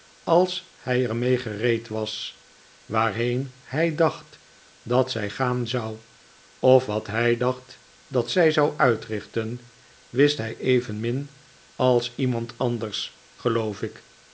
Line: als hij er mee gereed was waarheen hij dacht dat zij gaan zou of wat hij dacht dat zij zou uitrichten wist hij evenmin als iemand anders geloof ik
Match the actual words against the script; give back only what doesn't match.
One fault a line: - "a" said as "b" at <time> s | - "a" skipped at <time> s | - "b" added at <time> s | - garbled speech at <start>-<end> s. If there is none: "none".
none